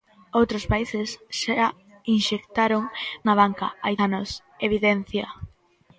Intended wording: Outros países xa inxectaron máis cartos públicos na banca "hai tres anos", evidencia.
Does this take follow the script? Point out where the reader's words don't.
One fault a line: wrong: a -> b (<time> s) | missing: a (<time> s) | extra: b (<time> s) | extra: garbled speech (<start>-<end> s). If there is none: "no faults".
missing: máis cartos públicos (2.8 s)
missing: tres (3.9 s)